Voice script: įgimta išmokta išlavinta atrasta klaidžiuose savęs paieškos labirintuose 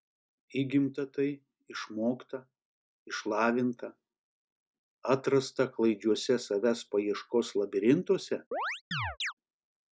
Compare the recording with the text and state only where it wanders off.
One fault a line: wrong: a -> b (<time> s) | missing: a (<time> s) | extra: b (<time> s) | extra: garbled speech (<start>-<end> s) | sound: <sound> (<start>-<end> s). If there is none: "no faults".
extra: tai (1.1 s)
sound: chirp (8.5-9.3 s)